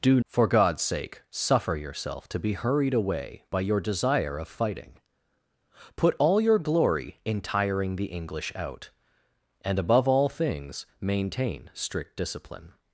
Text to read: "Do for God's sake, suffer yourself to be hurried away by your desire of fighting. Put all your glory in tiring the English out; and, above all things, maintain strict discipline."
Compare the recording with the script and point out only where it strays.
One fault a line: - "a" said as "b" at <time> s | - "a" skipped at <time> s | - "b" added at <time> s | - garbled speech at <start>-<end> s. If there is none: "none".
none